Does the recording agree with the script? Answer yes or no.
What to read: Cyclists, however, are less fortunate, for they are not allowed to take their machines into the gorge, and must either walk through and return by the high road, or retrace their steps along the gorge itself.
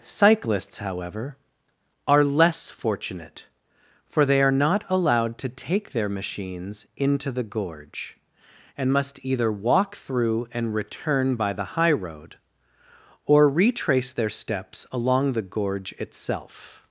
yes